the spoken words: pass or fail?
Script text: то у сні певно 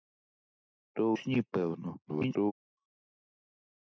fail